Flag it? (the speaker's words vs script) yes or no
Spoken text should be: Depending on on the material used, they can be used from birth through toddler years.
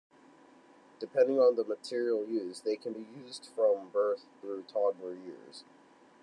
yes